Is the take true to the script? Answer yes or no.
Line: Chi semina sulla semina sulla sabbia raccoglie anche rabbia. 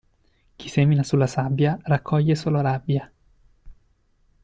no